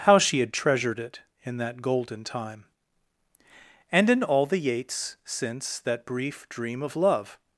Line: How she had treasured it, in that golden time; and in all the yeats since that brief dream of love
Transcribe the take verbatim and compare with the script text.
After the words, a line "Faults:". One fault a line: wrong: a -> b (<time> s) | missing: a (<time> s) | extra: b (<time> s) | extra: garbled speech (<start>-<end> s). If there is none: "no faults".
How she had treasured it, in that golden time; and in all the yeats since that brief dream of love
Faults:
no faults